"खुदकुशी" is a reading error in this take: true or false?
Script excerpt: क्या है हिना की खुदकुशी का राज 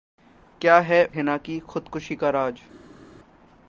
false